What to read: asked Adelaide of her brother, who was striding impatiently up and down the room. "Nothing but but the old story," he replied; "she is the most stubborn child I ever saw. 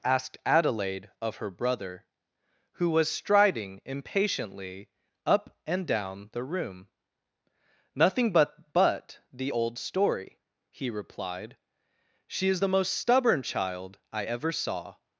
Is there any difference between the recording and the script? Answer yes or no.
no